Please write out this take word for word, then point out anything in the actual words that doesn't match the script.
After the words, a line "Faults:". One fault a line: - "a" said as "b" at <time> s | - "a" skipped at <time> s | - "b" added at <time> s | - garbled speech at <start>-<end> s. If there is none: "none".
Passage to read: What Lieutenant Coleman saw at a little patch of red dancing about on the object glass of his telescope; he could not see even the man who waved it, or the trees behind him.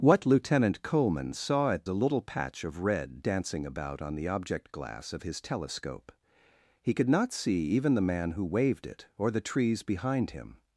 What Lieutenant Coleman saw at a little patch of red dancing about on the object glass of his telescope; he could not see even the man who waved it, or the trees behind him.
Faults:
none